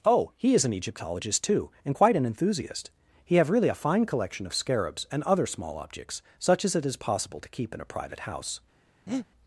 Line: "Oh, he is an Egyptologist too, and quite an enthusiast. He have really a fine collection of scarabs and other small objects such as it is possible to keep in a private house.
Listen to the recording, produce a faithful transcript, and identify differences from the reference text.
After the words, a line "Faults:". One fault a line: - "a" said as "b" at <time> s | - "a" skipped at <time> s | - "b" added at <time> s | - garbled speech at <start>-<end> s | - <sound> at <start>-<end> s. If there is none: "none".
"Oh, he is an Egyptologist too, and quite an enthusiast. He have really a fine collection of scarabs and other small objects such as it is possible to keep in a private house.
Faults:
- breath at 9.1-9.3 s